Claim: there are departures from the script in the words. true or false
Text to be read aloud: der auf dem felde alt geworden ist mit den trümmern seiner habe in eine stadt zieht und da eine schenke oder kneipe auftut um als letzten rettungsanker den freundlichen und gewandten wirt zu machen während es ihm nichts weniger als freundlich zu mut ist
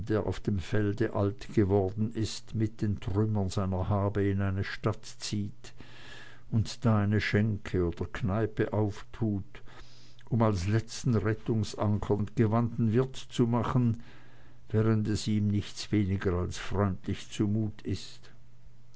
true